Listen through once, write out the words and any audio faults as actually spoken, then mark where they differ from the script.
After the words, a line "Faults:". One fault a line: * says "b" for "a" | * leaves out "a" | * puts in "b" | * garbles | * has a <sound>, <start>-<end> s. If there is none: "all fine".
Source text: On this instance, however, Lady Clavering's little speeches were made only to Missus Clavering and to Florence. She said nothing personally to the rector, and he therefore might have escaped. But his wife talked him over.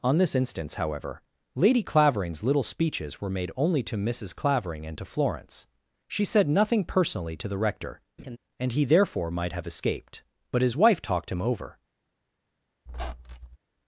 On this instance, however, Lady Clavering's little speeches were made only to Missus Clavering and to Florence. She said nothing personally to the rector, and he therefore might have escaped. But his wife talked him over.
Faults:
* has a laugh, 8.2-8.4 s
* has a squeak, 12.9-13.6 s